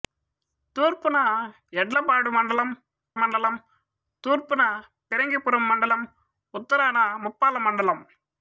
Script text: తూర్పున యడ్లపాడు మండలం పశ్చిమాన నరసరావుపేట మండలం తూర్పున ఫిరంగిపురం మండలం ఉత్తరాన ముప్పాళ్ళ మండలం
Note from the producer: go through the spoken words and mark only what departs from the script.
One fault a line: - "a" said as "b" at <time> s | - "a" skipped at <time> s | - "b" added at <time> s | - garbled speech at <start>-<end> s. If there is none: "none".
- "పశ్చిమాన నరసరావుపేట" skipped at 2.7 s